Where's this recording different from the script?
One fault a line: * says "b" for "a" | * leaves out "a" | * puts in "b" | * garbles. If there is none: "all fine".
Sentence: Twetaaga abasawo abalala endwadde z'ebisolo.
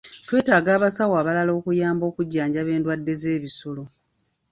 * puts in "okuyamba okujjanjaba"